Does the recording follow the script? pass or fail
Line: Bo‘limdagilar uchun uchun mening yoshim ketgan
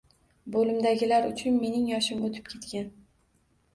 fail